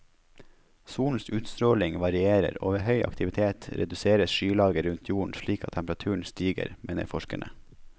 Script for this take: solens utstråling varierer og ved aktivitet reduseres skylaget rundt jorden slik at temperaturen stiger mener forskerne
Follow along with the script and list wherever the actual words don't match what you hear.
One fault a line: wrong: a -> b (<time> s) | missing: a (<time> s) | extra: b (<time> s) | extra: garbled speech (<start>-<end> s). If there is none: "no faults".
extra: høy (2.9 s)